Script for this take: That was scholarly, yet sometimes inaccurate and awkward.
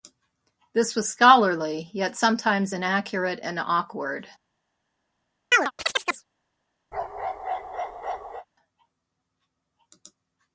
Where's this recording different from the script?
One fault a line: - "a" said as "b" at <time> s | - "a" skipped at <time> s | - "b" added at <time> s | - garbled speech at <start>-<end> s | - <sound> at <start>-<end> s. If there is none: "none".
- "That" said as "This" at 0.7 s
- chirp at 5.5-6.3 s
- bark at 6.9-8.5 s